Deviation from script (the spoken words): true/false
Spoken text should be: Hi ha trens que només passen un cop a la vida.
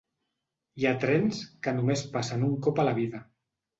false